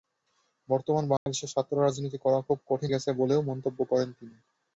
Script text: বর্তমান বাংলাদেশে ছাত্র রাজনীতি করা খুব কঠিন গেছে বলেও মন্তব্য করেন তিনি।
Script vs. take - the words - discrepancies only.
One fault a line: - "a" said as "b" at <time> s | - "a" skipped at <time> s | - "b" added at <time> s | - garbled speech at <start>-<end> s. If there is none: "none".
none